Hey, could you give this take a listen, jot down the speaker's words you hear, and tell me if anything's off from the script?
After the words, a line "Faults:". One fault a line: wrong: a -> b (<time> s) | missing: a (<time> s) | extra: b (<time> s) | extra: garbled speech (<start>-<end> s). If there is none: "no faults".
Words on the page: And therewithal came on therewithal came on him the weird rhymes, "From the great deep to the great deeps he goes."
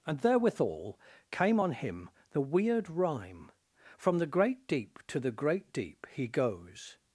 And therewithal came on him the weird rhyme, "From the great deep to the great deep he goes."
Faults:
missing: therewithal came on (1.7 s)
wrong: rhymes -> rhyme (2.9 s)
wrong: deeps -> deep (5.7 s)